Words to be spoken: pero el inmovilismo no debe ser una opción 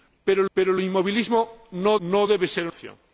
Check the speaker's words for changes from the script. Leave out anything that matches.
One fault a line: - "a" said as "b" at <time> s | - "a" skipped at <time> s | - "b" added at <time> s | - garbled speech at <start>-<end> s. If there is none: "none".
- "pero" added at 0.5 s
- "no" added at 2.0 s
- "una" skipped at 2.7 s